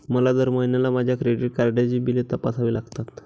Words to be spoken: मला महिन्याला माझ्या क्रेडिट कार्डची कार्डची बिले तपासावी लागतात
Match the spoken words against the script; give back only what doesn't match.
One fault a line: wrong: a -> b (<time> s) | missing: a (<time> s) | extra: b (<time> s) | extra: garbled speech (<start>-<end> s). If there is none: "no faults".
extra: दर (0.3 s)
missing: कार्डची (2.0 s)